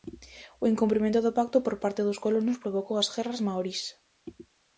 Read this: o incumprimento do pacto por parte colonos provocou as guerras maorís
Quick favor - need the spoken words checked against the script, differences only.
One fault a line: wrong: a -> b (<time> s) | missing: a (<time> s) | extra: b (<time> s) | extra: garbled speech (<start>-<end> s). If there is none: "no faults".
extra: dos (2.1 s)